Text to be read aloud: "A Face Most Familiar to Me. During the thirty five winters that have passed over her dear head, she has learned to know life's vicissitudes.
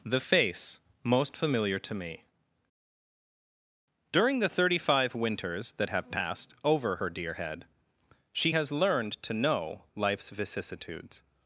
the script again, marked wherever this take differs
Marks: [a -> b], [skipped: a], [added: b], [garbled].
["A -> The] Face Most Familiar to Me. During the thirty five winters that have passed over her dear head, she has learned to know life's vicissitudes.